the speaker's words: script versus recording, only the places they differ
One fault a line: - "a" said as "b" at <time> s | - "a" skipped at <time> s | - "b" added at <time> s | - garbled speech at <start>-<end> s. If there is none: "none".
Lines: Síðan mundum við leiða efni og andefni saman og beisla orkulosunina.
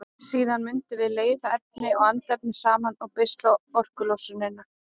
none